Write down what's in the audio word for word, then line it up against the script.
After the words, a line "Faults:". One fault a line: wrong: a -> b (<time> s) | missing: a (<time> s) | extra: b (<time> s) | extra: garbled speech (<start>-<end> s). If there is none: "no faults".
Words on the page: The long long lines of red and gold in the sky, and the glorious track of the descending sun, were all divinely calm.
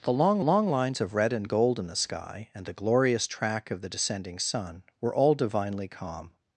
The long long lines of red and gold in the sky, and the glorious track of the descending sun, were all divinely calm.
Faults:
no faults